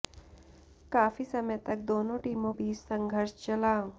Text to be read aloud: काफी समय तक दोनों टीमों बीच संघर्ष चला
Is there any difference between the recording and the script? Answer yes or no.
no